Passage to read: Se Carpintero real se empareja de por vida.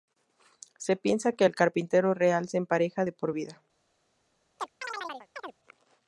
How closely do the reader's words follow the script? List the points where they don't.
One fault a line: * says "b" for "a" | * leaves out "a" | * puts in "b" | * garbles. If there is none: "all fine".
* puts in "piensa que el"